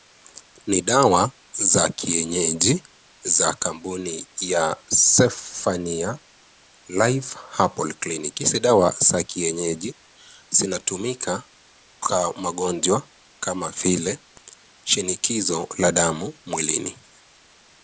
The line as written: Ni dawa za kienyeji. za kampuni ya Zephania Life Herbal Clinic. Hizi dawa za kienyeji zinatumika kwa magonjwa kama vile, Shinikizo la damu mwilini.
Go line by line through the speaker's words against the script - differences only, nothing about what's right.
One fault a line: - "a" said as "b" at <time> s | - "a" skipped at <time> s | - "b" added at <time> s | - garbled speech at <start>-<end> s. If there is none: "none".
none